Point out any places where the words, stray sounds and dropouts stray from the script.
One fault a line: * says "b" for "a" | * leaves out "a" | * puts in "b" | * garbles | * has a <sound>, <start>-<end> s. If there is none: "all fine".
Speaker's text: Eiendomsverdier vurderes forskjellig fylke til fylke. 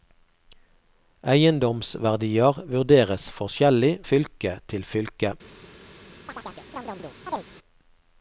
* has a chirp, 6.3-7.5 s